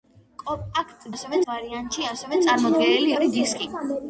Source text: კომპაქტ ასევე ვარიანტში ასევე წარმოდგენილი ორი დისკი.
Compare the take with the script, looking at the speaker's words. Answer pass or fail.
pass